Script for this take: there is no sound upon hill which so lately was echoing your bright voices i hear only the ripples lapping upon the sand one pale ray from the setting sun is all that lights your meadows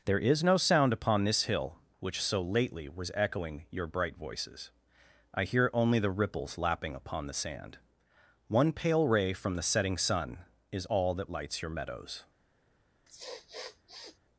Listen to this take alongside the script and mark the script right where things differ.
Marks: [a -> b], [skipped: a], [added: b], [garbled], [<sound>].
there is no sound upon [added: this] hill which so lately was echoing your bright voices i hear only the ripples lapping upon the sand one pale ray from the setting sun is all that lights your meadows [sniff]